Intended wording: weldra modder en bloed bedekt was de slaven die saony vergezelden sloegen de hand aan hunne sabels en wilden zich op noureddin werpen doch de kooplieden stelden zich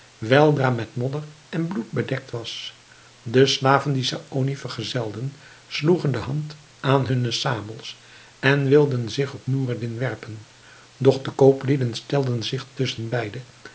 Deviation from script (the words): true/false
true